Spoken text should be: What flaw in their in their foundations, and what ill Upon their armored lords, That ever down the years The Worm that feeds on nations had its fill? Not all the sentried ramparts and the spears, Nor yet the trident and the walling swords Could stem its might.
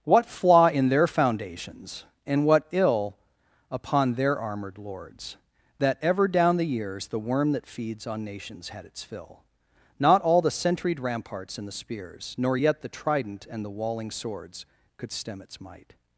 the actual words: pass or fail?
fail